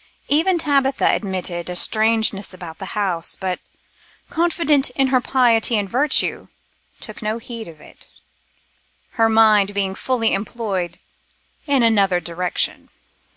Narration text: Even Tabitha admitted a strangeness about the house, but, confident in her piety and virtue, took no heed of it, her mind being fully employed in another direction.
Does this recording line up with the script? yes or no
yes